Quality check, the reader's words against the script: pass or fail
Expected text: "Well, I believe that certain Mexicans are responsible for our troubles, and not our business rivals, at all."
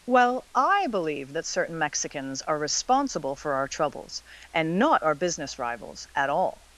pass